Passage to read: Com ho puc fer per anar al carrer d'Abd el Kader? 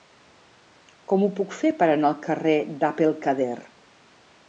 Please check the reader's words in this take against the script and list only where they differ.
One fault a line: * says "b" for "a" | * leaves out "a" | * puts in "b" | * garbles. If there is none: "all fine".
all fine